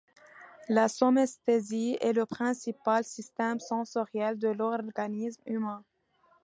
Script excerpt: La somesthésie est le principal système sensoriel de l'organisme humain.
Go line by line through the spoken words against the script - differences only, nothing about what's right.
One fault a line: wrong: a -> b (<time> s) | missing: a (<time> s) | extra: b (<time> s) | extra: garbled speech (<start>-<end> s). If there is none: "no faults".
no faults